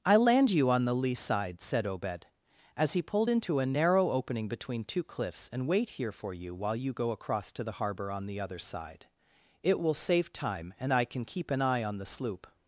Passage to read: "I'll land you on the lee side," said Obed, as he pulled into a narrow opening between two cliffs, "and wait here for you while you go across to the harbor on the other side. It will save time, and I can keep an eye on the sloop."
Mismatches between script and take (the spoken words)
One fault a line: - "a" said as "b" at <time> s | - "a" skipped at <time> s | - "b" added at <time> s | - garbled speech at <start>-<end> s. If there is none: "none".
none